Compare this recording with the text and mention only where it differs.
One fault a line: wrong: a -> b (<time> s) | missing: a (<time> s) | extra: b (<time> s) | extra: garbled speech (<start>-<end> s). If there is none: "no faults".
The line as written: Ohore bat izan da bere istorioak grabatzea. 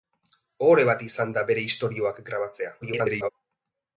extra: garbled speech (2.8-3.3 s)